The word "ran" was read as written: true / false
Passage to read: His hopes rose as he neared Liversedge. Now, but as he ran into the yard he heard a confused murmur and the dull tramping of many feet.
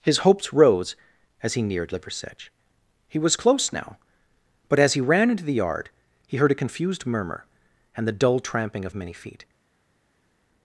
true